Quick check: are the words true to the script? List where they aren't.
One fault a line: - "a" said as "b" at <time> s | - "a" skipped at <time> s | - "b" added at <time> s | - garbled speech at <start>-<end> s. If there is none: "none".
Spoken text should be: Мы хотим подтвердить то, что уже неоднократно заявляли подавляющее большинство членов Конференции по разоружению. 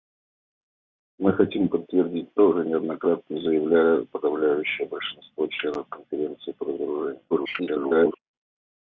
- "что" skipped at 2.5 s
- garbled speech at 7.3-8.2 s